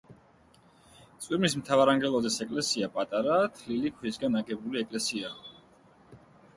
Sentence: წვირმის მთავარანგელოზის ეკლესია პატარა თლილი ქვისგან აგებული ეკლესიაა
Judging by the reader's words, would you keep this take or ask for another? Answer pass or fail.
pass